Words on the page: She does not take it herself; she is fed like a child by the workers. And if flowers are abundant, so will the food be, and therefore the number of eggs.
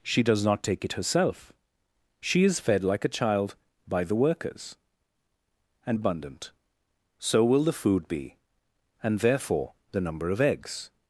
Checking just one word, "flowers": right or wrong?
wrong